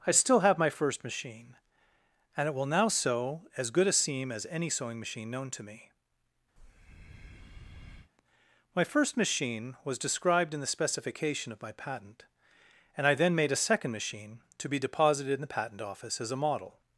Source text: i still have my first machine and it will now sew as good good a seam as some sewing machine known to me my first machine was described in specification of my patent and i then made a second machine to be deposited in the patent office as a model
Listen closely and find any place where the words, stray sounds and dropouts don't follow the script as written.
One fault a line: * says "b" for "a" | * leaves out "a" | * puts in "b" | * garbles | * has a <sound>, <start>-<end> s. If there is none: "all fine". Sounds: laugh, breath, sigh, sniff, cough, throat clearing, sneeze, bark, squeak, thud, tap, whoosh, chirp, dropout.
* leaves out "good"
* says "any" for "some"
* has a breath, 6.6-8.1 s
* puts in "the"